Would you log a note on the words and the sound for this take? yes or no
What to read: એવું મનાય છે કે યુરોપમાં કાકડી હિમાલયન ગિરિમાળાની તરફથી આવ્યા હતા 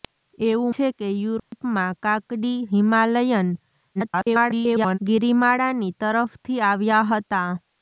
yes